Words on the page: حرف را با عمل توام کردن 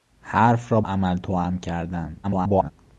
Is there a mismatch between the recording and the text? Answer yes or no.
yes